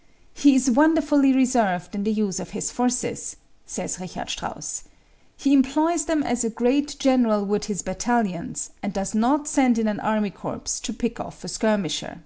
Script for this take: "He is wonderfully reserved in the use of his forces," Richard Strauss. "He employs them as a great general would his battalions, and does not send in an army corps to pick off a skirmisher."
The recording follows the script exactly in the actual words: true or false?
false